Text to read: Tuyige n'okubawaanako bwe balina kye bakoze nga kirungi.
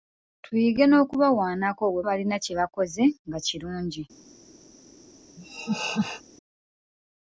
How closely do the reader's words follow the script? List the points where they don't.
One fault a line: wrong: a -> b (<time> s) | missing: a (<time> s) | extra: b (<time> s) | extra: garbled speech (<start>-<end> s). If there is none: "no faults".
no faults